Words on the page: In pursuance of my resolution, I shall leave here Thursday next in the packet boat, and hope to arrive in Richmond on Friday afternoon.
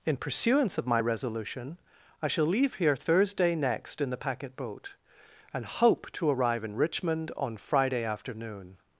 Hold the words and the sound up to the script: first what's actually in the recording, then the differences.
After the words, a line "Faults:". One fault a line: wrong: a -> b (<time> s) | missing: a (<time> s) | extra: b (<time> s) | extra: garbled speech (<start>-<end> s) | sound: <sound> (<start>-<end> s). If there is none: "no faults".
In pursuance of my resolution, I shall leave here Thursday next in the packet boat, and hope to arrive in Richmond on Friday afternoon.
Faults:
no faults